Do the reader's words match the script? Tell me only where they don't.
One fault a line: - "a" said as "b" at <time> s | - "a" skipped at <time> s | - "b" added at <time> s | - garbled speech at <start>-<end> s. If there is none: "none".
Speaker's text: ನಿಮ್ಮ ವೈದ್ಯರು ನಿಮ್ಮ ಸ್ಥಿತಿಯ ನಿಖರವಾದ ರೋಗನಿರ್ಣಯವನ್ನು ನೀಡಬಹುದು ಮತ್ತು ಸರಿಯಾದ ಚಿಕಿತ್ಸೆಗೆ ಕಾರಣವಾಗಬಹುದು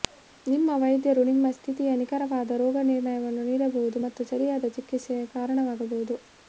none